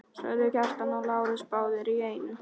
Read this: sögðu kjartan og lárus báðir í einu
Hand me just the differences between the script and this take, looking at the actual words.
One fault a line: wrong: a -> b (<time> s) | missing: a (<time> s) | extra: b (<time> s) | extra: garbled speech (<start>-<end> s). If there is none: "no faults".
no faults